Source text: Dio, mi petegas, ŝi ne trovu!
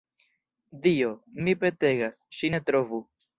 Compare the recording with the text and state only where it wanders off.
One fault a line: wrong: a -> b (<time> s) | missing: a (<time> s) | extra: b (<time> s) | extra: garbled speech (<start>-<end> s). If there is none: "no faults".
no faults